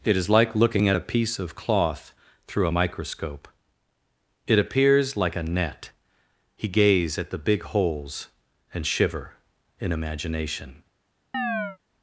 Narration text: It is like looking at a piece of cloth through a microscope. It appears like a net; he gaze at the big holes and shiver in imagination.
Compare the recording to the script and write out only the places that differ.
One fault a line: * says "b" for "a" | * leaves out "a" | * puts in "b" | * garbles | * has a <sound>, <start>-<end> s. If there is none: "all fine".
* has a chirp, 11.3-11.8 s